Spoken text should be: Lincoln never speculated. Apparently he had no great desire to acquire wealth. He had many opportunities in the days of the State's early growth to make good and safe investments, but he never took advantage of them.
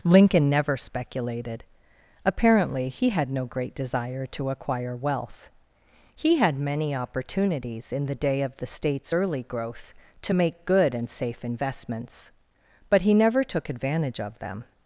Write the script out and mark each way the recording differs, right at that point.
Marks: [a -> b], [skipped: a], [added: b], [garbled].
Lincoln never speculated. Apparently he had no great desire to acquire wealth. He had many opportunities in the [days -> day] of the State's early growth to make good and safe investments, but he never took advantage of them.